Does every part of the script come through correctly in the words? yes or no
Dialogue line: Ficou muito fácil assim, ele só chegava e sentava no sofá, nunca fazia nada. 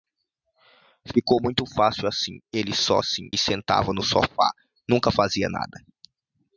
no